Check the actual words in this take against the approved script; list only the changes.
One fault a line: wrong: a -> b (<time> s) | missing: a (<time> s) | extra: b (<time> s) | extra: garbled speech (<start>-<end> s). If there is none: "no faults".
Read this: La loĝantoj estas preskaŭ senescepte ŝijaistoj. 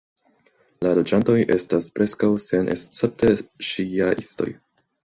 no faults